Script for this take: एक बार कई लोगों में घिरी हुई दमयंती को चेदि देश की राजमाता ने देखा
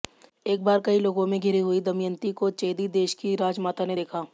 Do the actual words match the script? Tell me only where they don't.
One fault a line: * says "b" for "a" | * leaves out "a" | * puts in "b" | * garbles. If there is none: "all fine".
all fine